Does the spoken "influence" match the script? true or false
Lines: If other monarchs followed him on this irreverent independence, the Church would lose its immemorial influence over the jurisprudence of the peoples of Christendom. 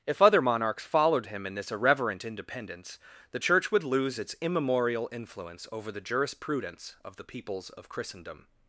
true